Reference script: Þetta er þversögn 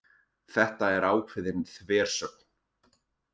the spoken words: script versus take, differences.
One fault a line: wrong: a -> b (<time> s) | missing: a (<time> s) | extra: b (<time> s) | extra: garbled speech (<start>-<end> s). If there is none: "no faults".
extra: ákveðin (1.1 s)